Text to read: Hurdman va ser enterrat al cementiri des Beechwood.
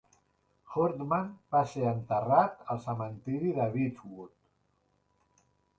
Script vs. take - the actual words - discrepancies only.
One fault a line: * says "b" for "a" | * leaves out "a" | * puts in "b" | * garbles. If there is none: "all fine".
* says "de" for "des"